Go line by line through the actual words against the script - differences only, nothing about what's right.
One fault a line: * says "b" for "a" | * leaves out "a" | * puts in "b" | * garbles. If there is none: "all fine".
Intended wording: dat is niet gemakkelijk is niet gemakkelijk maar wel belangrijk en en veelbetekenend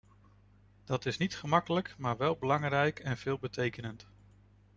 * leaves out "is niet gemakkelijk"
* leaves out "en"